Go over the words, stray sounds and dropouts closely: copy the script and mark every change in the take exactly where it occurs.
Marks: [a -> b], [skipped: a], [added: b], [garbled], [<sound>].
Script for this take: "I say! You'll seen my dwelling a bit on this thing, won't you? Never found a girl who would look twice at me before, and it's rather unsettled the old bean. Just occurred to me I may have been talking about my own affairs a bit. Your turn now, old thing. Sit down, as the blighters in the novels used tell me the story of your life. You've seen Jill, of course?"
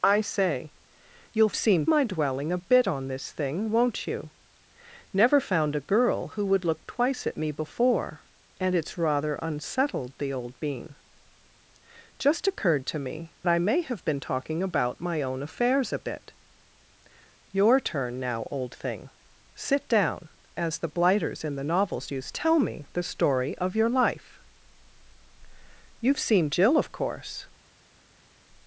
"I say! You'll seen my dwelling a bit on this thing, won't you? Never found a girl who would look twice at me before, and it's rather unsettled the old bean. Just occurred to me I may have been talking about my own affairs a bit. Your turn now, old thing. Sit down, as the blighters in the novels used tell me the story of your life. You've seen Jill, of course?"